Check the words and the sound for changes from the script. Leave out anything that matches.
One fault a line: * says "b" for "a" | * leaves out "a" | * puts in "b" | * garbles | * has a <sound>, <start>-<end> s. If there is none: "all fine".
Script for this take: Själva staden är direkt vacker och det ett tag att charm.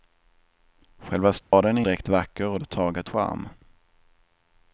* has a dropout, 1.4-1.5 s